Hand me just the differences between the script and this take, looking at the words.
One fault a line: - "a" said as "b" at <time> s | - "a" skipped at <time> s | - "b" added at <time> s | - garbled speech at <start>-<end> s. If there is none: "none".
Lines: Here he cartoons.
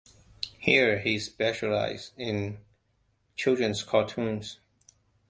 - "specialized in children's" added at 1.2 s